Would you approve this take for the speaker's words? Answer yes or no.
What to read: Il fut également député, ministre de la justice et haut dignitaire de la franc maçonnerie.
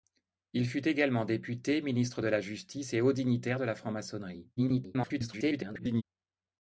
no